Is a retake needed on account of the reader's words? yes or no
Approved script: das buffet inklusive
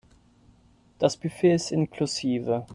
yes